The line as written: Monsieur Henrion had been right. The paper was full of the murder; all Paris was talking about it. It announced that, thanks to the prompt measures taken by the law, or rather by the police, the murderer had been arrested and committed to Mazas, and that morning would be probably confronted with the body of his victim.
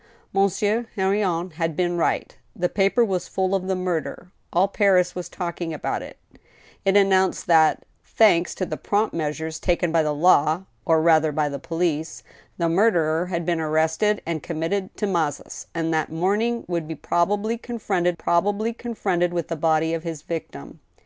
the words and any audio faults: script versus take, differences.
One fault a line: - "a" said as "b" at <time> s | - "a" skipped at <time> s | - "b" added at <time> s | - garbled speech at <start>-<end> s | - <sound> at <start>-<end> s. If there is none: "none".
- "probably confronted" added at 18.1 s